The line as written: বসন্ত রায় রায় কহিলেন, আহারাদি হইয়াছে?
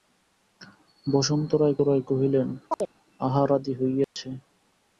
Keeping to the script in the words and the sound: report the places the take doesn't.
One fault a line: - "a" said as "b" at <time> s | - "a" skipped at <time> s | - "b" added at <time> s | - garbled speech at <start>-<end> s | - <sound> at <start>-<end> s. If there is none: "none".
- chirp at 2.7-2.9 s
- dropout at 4.0-4.2 s